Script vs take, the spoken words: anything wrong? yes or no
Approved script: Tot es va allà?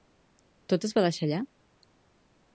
yes